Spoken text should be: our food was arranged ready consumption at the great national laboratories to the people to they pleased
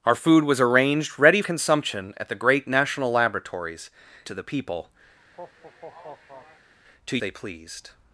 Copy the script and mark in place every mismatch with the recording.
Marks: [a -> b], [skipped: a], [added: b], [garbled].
our food was arranged ready consumption at the great national laboratories to the people to they pleased